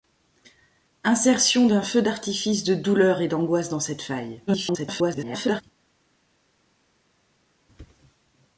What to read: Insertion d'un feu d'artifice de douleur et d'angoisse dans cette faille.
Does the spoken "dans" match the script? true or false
true